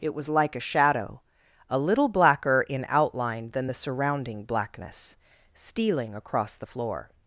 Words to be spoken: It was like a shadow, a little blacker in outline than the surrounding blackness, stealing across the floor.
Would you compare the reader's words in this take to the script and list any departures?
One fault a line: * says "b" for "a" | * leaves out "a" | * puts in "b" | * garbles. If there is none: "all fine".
all fine